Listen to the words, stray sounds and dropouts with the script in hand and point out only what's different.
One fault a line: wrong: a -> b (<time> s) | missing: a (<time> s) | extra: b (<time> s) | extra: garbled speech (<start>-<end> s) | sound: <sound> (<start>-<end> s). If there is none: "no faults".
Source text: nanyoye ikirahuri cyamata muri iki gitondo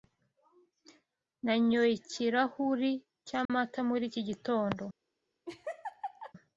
sound: dropout (3.4-3.5 s)
sound: laugh (5.5-6.3 s)